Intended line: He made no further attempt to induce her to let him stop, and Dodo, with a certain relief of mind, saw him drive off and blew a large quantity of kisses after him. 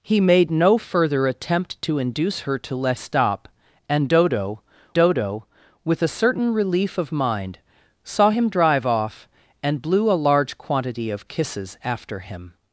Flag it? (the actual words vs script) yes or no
yes